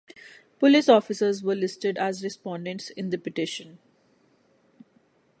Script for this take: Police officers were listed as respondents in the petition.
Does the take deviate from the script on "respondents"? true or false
false